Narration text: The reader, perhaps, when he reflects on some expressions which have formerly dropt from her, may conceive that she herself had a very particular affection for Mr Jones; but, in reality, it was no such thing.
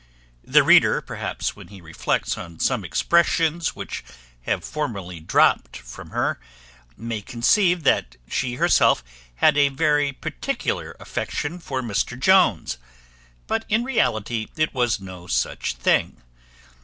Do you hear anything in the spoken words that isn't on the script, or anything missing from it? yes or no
no